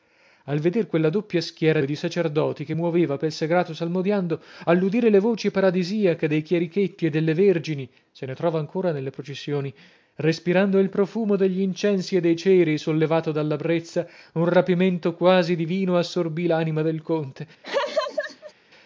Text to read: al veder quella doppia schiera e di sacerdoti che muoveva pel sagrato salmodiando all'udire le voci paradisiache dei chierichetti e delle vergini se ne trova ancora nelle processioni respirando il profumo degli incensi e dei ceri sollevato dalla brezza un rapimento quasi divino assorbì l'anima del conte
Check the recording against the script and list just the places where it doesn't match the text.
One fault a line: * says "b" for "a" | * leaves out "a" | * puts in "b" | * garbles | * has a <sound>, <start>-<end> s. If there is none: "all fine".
* has a laugh, 17.6-18.5 s